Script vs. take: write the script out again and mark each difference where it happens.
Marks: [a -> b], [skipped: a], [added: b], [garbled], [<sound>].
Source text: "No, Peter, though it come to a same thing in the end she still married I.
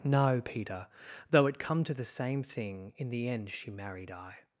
"No, Peter, though it come to [a -> the] same thing in the end she [skipped: still] married I.